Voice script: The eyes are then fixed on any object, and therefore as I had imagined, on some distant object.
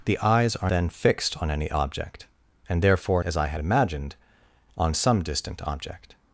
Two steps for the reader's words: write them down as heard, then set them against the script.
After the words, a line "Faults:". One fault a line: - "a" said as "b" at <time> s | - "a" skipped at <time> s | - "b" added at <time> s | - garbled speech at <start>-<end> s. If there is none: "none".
The eyes are then fixed on any object, and therefore as I had imagined, on some distant object.
Faults:
none